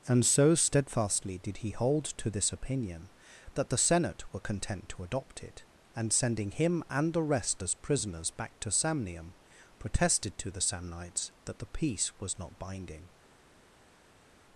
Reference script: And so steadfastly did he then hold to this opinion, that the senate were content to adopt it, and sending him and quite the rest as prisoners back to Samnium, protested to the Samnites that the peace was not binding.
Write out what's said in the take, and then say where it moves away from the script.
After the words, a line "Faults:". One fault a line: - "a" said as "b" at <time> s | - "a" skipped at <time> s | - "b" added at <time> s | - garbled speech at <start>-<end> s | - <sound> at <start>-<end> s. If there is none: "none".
And so steadfastly did he hold to this opinion, that the senate were content to adopt it, and sending him and the rest as prisoners back to Samnium, protested to the Samnites that the peace was not binding.
Faults:
- "then" skipped at 1.7 s
- "quite" skipped at 7.1 s